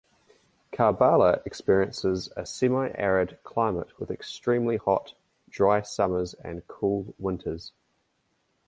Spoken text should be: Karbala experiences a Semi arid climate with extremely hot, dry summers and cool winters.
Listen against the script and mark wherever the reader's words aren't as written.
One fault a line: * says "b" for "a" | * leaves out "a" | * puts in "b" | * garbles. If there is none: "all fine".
all fine